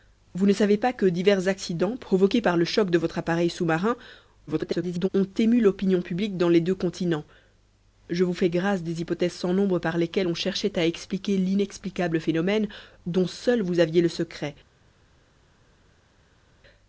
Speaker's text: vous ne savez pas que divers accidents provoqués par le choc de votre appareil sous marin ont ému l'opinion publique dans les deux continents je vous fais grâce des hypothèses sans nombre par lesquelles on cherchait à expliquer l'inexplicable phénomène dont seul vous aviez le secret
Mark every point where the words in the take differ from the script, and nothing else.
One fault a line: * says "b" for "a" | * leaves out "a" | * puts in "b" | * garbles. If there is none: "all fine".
* garbles